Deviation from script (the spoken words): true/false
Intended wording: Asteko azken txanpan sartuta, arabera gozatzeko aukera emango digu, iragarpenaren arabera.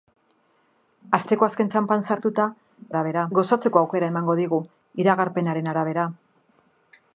false